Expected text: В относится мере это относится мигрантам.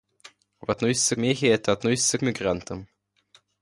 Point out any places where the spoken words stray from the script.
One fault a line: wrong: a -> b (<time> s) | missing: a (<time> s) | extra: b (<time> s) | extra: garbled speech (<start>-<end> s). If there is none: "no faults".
no faults